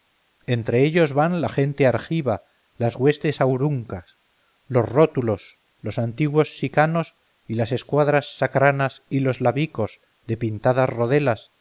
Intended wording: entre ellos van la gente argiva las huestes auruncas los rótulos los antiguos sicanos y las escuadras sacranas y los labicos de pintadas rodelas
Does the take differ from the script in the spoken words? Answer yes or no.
no